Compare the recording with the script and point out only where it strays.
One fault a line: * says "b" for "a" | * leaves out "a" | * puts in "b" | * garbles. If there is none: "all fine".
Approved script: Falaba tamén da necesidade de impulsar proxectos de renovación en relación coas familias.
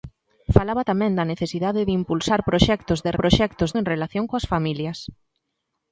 * says "proxectos" for "renovación"